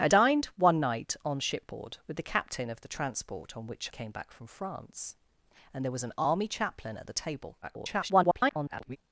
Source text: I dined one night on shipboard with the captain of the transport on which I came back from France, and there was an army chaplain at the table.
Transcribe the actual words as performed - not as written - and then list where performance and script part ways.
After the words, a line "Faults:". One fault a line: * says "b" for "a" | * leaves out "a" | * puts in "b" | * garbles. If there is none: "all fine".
I dined one night on shipboard with the captain of the transport on which came back from France, and there was an army chaplain at the table. [garbled]
Faults:
* leaves out "I"
* garbles